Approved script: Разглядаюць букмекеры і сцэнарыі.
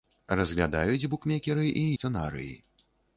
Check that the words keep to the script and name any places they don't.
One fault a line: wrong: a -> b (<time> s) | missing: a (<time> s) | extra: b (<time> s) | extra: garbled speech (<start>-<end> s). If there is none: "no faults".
no faults